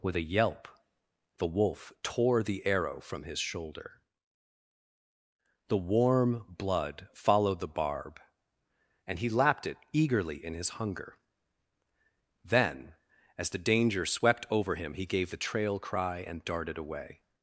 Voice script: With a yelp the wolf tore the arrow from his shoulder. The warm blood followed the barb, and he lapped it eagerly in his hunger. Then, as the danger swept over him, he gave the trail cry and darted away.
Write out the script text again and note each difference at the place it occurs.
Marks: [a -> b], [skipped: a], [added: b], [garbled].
With a yelp the wolf tore the arrow from his shoulder. The warm blood followed the barb, and he lapped it eagerly in his hunger. Then, as the danger swept over him, he gave the trail cry and darted away.